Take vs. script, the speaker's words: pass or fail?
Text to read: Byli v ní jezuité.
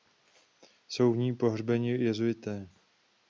fail